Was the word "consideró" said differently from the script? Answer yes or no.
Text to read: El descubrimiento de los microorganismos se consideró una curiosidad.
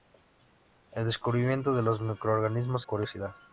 yes